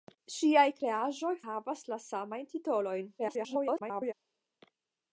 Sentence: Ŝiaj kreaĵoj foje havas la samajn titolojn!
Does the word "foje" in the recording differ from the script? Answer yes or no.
yes